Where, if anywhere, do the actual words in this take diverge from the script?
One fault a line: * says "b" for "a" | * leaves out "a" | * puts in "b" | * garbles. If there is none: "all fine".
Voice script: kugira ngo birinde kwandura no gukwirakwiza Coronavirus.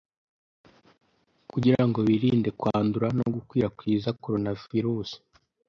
all fine